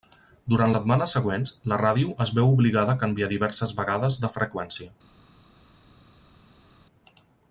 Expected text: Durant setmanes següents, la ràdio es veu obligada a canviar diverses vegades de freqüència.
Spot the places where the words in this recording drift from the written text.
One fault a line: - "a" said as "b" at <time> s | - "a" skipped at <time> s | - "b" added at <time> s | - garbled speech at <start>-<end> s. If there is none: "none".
none